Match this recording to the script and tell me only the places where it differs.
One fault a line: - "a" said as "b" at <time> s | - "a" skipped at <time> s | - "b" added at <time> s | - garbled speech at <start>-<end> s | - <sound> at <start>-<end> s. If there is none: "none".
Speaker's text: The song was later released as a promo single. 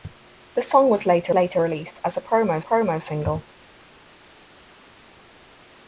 - "later" added at 1.3 s
- "promo" added at 2.6 s